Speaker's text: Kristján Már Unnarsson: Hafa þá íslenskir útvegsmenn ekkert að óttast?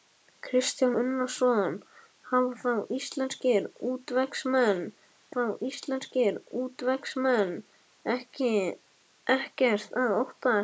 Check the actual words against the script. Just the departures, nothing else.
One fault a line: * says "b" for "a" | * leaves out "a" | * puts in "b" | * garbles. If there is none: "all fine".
* leaves out "Már"
* puts in "þá íslenskir útvegsmenn"